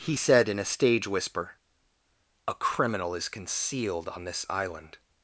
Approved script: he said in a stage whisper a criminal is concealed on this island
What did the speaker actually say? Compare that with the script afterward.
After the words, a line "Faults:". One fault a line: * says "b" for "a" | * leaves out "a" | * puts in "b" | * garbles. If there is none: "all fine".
he said in a stage whisper a criminal is concealed on this island
Faults:
all fine